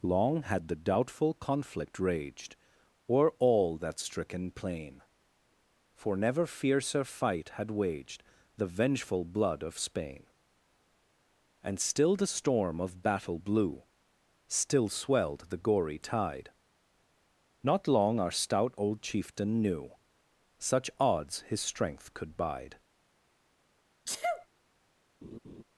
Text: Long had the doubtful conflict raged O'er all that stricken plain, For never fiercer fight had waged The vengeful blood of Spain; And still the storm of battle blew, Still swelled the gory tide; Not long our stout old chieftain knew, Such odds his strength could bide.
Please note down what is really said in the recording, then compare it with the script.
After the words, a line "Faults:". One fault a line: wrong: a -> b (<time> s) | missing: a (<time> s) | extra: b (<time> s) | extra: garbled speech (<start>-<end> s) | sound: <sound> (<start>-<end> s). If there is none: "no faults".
Long had the doubtful conflict raged O'er all that stricken plain, For never fiercer fight had waged The vengeful blood of Spain; And still the storm of battle blew, Still swelled the gory tide; Not long our stout old chieftain knew, Such odds his strength could bide.
Faults:
sound: sneeze (24.1-24.5 s)
sound: laugh (25.2-25.6 s)